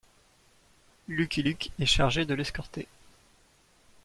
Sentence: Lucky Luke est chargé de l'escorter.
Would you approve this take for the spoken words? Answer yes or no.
yes